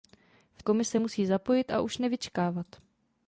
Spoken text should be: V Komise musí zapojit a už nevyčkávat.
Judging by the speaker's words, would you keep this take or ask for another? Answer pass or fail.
pass